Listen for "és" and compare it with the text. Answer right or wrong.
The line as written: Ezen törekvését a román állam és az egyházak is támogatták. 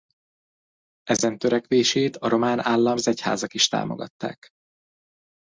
wrong